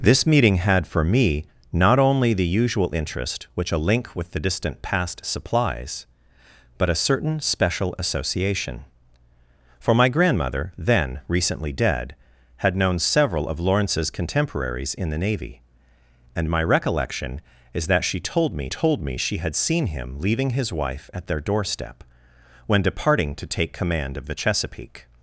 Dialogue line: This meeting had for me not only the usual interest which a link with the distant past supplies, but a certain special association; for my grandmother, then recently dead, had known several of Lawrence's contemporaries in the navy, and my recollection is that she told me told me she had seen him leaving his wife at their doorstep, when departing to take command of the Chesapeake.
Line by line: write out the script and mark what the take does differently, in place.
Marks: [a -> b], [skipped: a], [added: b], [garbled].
This meeting had for me not only the usual interest which a link with the distant past supplies, but a certain special association; for my grandmother, then recently dead, had known several of Lawrence's contemporaries in the navy, and my recollection is that she told me told me she had seen him leaving his wife at their doorstep, when departing to take command of the Chesapeake.